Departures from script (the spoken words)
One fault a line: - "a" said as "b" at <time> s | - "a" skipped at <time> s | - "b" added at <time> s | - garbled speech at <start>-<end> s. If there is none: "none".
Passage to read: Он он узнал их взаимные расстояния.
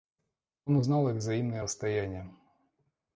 - "он" skipped at 0.8 s